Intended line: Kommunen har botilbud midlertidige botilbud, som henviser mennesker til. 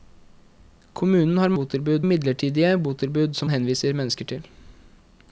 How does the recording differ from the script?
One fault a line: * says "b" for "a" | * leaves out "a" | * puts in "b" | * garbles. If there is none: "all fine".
all fine